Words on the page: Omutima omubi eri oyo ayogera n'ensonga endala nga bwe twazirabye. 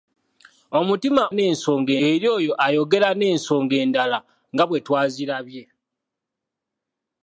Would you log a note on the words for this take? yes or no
yes